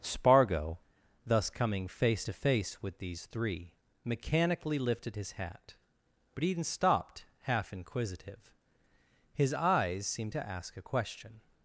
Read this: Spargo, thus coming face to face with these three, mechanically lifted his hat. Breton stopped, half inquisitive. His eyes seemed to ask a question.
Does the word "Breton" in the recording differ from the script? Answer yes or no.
yes